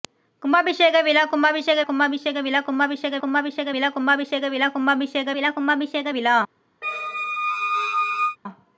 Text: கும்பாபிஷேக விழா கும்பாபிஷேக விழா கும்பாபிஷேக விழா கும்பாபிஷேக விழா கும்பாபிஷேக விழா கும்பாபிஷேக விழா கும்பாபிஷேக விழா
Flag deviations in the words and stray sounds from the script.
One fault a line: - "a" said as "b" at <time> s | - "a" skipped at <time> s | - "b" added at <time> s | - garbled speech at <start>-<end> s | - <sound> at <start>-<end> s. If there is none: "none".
- "கும்பாபிஷேக" added at 1.8 s
- "விழா" skipped at 3.2 s
- squeak at 6.8-8.4 s